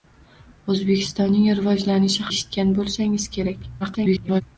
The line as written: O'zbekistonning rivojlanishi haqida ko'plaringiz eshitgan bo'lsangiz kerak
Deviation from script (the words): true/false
true